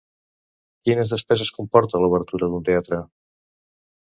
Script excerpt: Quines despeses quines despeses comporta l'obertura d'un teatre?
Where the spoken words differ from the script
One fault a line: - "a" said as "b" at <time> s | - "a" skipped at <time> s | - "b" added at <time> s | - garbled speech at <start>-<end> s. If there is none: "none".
- "quines despeses" skipped at 1.5 s